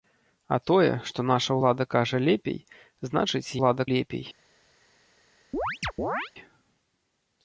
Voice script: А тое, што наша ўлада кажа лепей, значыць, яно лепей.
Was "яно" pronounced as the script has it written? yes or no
no